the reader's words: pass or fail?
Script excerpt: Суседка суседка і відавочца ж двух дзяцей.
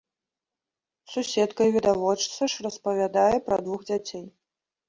fail